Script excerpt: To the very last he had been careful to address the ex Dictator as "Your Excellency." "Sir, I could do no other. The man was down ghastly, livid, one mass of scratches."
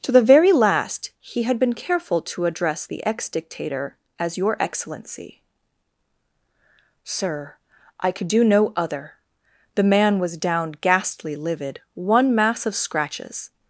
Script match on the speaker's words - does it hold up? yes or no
yes